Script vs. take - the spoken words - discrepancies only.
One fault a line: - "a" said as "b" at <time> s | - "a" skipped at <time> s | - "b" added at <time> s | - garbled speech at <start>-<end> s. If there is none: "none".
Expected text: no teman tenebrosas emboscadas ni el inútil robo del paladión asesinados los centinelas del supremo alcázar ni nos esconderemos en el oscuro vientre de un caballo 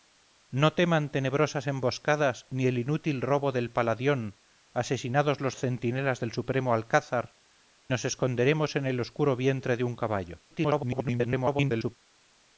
- "ni" skipped at 7.4 s
- garbled speech at 10.5-12.0 s